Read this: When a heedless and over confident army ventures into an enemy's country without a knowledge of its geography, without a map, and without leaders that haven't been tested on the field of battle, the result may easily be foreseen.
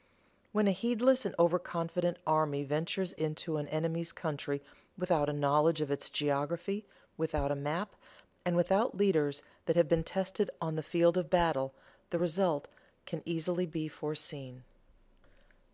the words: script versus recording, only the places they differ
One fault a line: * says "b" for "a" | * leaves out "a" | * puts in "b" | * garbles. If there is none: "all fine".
* says "have" for "haven't"
* says "can" for "may"